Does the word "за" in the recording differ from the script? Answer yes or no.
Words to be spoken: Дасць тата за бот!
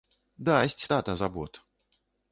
no